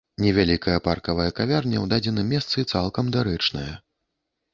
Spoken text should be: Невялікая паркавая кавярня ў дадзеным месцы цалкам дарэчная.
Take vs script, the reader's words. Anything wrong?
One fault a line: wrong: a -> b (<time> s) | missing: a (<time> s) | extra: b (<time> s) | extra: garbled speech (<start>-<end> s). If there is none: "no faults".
no faults